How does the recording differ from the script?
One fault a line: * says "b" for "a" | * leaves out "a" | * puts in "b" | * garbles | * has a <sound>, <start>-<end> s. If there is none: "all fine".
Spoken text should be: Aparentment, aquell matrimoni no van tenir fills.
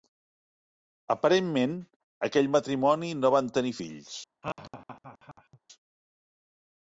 * has a laugh, 4.4-5.6 s